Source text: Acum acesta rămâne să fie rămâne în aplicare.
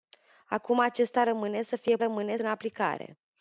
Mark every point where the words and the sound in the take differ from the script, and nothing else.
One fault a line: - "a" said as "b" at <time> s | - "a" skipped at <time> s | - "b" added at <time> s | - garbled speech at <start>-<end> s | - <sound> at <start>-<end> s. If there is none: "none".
none